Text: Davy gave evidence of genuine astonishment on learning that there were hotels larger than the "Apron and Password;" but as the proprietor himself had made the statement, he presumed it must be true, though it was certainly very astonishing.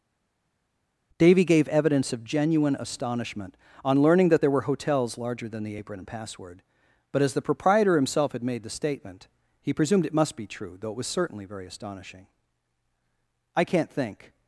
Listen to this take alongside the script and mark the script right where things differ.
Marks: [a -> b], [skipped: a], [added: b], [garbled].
Davy gave evidence of genuine astonishment on learning that there were hotels larger than the "Apron and Password;" but as the proprietor himself had made the statement, he presumed it must be true, though it was certainly very astonishing. [added: I can't think]